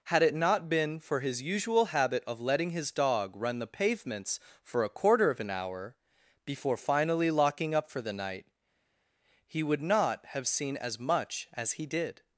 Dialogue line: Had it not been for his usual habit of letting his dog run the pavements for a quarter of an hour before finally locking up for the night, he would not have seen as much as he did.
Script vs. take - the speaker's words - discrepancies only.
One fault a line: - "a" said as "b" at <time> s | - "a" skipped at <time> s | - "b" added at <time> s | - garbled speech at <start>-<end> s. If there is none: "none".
none